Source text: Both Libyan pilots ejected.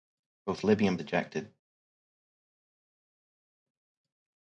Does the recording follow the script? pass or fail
fail